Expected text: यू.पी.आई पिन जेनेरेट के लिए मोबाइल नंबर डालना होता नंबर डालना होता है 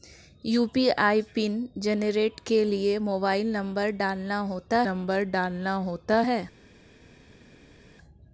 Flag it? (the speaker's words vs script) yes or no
no